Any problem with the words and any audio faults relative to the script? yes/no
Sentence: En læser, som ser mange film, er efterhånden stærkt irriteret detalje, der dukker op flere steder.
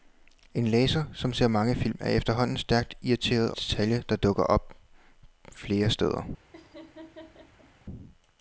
yes